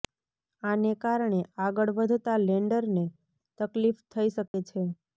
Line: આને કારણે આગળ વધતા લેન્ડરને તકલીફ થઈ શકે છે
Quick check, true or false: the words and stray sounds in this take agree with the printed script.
false